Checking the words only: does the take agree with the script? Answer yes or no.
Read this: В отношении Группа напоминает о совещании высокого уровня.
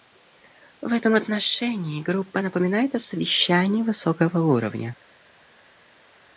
no